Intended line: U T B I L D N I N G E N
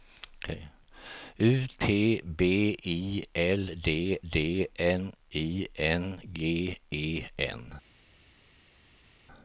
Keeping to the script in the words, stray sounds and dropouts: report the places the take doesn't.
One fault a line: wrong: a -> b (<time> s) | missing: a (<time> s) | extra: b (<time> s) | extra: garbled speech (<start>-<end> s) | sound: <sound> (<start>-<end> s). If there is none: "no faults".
extra: D (4.3 s)